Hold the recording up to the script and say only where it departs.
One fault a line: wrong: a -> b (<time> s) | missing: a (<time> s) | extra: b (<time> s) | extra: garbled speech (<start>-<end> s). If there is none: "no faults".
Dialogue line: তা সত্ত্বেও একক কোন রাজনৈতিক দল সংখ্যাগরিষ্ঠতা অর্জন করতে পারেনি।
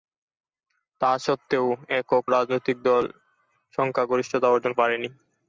missing: কোন (2.2 s)
missing: করতে (4.7 s)